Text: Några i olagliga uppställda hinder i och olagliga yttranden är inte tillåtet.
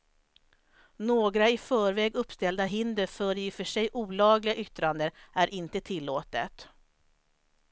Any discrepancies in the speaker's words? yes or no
yes